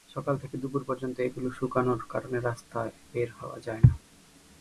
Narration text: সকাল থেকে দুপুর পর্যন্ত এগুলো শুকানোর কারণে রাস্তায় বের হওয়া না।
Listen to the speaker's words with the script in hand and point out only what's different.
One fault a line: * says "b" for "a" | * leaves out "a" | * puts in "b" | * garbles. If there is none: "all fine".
* puts in "যায়"